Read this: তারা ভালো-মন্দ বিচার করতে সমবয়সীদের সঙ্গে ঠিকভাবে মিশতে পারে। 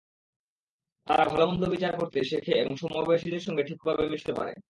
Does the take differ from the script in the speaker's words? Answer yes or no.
yes